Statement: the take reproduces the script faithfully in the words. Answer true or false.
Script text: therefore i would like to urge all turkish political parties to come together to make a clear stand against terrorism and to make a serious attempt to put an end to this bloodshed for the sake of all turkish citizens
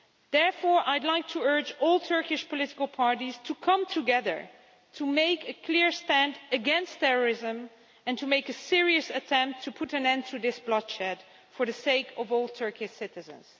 true